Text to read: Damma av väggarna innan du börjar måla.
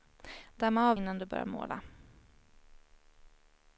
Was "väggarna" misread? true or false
true